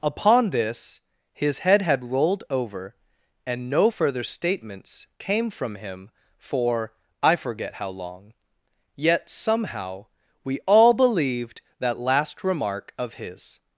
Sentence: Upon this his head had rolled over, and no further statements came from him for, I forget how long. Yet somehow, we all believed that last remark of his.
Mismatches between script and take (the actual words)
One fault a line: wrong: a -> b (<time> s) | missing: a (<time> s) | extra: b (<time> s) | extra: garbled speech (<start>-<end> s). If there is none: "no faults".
no faults